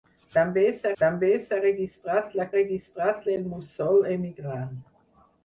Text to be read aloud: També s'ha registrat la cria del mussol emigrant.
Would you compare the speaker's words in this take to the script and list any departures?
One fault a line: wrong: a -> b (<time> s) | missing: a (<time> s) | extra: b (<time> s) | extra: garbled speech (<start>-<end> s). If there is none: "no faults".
extra: també s'ha (1.0 s)
wrong: cria -> registrat (2.5 s)